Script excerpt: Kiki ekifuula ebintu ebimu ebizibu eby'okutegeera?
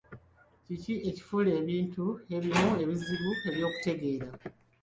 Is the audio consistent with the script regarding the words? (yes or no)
yes